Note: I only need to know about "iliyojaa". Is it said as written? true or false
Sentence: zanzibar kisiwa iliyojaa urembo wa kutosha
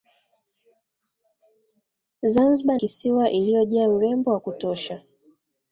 true